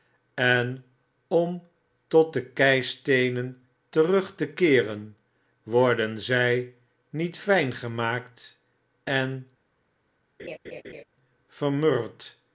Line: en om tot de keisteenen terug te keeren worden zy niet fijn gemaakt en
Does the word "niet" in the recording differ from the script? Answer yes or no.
no